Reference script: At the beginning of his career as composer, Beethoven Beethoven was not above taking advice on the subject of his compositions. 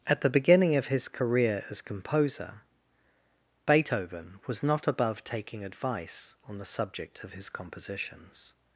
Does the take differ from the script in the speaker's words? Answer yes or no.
yes